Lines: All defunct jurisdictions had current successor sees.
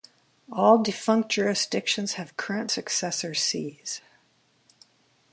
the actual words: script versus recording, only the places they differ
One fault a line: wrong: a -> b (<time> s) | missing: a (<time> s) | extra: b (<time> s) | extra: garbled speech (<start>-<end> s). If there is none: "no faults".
wrong: had -> have (2.1 s)